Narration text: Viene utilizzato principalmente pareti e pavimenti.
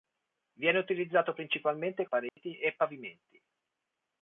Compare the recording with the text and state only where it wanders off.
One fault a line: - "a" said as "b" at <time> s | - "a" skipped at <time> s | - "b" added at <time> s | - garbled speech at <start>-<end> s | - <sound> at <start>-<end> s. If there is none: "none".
- dropout at 2.3-2.4 s